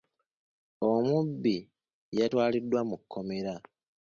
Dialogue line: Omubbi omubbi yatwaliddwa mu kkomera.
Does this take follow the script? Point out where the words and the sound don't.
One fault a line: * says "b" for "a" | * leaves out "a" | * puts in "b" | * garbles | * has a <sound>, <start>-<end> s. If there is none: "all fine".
* leaves out "omubbi"